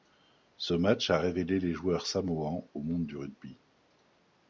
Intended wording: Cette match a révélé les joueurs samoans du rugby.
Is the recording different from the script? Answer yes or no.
yes